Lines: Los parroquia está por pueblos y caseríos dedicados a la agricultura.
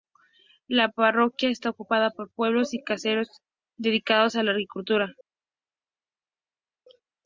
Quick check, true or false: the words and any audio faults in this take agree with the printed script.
false